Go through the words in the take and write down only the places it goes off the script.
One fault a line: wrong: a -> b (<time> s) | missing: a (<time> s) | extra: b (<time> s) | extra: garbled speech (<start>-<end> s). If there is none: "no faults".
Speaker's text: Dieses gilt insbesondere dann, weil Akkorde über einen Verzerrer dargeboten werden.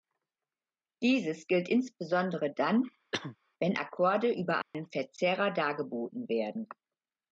wrong: weil -> wenn (3.6 s)